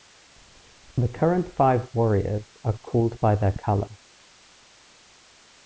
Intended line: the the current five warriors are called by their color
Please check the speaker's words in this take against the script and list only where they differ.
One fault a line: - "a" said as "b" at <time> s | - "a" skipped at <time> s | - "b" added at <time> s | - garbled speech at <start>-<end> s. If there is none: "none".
- "the" skipped at 1.1 s